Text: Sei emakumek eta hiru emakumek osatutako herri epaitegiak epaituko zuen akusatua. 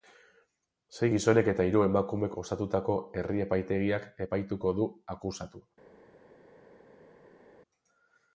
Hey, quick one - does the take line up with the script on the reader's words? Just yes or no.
no